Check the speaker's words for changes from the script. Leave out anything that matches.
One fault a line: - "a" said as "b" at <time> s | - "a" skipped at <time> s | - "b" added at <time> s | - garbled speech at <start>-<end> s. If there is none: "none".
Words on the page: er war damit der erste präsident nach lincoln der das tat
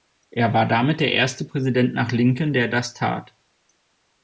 none